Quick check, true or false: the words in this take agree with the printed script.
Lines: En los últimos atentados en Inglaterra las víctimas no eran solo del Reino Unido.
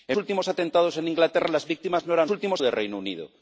false